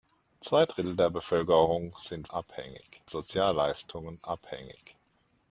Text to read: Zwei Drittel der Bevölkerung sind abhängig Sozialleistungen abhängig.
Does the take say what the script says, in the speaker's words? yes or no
yes